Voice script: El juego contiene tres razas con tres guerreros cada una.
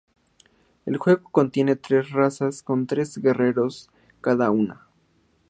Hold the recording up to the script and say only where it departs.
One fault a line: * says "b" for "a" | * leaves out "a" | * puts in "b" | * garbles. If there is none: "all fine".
all fine